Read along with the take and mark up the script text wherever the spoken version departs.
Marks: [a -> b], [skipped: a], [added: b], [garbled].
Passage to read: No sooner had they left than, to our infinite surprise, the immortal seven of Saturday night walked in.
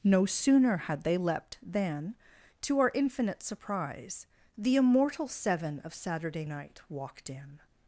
No sooner had they [left -> leapt] than, to our infinite surprise, the immortal seven of Saturday night walked in.